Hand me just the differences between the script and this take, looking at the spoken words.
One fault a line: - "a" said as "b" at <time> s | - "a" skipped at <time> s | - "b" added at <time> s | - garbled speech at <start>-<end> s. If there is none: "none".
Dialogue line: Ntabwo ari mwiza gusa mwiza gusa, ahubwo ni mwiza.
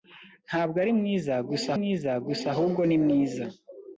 none